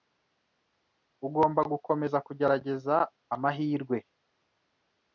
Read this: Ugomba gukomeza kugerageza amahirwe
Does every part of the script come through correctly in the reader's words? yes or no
yes